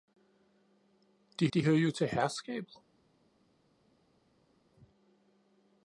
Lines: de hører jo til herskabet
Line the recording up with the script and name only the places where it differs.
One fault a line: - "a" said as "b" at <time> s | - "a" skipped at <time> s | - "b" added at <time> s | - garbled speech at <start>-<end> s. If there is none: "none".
- "de" added at 1.5 s